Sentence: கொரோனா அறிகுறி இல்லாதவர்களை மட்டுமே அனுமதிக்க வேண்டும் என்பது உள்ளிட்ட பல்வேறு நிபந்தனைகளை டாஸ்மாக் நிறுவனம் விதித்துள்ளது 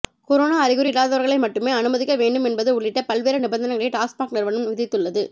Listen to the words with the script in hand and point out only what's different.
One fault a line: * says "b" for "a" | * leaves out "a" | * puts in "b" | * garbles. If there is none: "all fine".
all fine